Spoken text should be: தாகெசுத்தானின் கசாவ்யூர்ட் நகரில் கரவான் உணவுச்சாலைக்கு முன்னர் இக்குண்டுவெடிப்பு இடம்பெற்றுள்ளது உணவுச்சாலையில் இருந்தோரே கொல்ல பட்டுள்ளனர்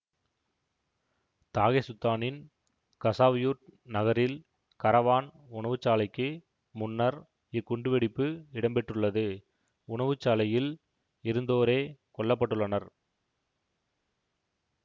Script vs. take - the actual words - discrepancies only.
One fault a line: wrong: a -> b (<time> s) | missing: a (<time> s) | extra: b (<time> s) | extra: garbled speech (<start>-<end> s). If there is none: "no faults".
no faults